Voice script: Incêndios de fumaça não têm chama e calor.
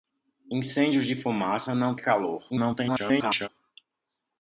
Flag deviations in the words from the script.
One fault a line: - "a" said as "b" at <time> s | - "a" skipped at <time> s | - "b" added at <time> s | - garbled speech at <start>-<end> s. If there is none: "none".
- "têm chama" skipped at 1.9 s
- garbled speech at 2.5-3.5 s